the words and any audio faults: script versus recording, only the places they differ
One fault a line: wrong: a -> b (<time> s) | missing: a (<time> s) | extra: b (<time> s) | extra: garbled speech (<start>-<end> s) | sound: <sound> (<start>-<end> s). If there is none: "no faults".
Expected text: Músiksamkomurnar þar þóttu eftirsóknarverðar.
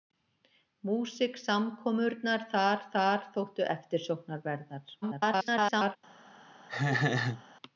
extra: þar (3.0 s)
extra: garbled speech (5.0-6.0 s)
sound: laugh (6.7-7.4 s)